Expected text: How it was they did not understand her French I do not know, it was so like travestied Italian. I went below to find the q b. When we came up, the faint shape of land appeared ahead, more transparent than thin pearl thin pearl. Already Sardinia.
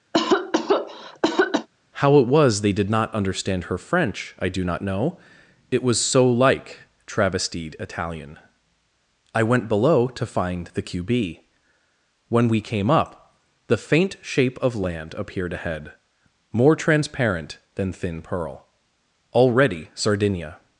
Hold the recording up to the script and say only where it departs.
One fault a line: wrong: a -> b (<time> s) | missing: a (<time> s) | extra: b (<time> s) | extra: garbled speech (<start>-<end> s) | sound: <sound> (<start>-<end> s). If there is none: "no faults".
sound: cough (0.1-1.7 s)
missing: thin pearl (18.7 s)